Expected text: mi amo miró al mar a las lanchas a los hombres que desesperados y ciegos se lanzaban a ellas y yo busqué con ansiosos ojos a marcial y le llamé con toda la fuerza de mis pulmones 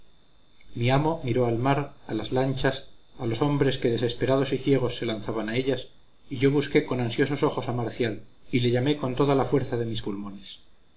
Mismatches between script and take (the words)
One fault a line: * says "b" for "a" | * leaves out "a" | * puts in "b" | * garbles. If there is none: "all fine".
all fine